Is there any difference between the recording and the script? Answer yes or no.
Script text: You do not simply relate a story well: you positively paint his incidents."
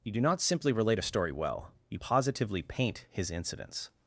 no